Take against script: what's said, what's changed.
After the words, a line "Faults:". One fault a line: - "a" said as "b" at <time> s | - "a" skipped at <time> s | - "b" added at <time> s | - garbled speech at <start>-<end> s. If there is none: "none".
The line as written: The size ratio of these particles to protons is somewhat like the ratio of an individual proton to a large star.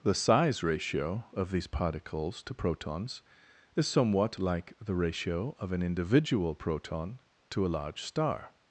The size ratio of these particles to protons is somewhat like the ratio of an individual proton to a large star.
Faults:
none